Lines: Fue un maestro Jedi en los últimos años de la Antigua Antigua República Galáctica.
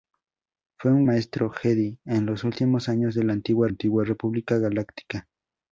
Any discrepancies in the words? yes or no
no